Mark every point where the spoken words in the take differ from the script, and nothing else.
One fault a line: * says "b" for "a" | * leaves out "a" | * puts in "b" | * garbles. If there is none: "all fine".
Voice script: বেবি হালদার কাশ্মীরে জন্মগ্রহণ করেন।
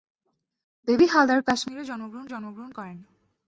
* puts in "জন্মগ্রহণ"